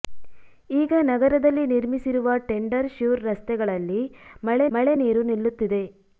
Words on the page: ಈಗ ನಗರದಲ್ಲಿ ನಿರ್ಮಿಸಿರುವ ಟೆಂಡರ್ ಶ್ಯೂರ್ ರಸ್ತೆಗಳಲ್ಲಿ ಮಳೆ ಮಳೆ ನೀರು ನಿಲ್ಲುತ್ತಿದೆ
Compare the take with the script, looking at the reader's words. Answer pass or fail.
pass